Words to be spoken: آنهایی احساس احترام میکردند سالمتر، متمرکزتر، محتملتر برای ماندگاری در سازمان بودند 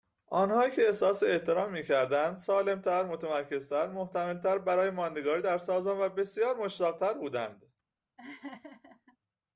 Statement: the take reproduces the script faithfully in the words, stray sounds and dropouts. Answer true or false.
false